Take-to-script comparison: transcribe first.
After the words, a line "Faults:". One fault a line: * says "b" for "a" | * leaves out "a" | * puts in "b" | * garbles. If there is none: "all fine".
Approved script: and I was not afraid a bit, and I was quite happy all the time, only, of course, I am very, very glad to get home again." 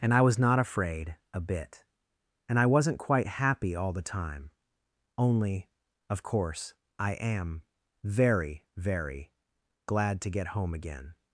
and I was not afraid a bit, and I wasn't quite happy all the time, only, of course, I am very, very glad to get home again."
Faults:
* says "wasn't" for "was"